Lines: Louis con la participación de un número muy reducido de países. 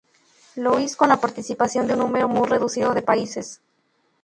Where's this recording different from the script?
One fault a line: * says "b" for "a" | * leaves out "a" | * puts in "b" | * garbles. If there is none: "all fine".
all fine